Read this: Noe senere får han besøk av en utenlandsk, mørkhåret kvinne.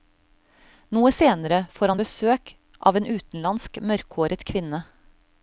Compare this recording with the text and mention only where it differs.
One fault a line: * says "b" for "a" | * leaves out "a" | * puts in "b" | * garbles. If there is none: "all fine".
all fine